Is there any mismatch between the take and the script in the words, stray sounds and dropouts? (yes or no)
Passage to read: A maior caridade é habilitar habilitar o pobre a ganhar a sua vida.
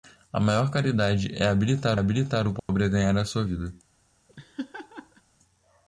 yes